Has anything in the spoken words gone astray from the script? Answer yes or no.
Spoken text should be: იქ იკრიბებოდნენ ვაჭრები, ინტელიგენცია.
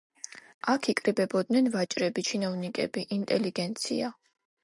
yes